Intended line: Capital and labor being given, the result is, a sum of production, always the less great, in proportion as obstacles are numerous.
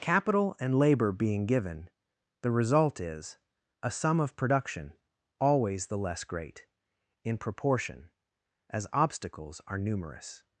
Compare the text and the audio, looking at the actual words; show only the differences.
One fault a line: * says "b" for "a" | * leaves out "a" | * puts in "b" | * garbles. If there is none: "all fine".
all fine